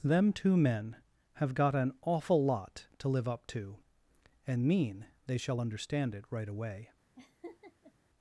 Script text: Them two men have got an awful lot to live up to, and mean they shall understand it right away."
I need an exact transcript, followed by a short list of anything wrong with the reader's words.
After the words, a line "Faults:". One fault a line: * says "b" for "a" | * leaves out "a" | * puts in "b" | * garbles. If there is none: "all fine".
Them two men have got an awful lot to live up to, and mean they shall understand it right away."
Faults:
all fine